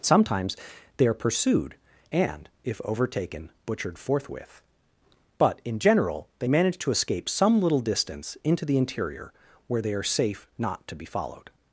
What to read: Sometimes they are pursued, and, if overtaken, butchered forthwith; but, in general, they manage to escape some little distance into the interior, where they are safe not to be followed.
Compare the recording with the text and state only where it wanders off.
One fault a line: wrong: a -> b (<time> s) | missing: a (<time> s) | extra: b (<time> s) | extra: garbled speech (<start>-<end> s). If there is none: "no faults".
no faults